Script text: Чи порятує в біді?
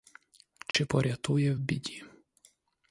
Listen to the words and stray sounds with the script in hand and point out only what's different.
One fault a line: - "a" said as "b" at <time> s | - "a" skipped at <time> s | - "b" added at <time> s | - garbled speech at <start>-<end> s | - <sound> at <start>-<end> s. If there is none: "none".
- dropout at 0.7-0.7 s